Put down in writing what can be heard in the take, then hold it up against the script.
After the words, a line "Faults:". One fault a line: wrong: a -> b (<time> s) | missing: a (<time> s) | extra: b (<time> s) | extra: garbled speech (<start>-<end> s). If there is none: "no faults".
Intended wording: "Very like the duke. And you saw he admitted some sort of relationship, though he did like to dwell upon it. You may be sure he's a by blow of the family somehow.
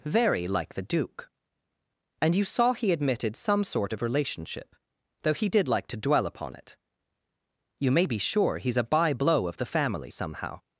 "Very like the duke. And you saw he admitted some sort of relationship, though he did like to dwell upon it. You may be sure he's a by blow of the family somehow.
Faults:
no faults